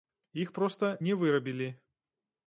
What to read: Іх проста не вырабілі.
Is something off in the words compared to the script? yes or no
no